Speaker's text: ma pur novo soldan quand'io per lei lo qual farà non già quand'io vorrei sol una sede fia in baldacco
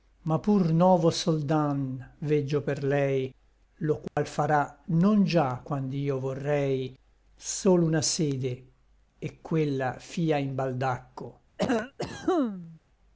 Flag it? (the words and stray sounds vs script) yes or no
yes